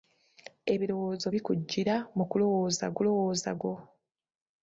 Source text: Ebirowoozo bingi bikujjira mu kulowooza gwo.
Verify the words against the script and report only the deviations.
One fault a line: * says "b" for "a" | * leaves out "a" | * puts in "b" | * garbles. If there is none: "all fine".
* leaves out "bingi"
* puts in "kulowooza"